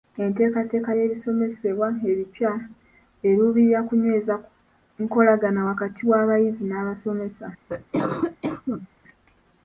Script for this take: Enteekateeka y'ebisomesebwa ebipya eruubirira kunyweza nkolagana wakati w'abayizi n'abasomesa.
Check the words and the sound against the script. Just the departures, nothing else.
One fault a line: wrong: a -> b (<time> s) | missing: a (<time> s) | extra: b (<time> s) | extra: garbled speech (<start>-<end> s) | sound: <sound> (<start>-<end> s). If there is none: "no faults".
sound: cough (7.7-8.9 s)